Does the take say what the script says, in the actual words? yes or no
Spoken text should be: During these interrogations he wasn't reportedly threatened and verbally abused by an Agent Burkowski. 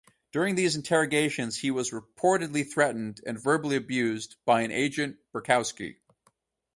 no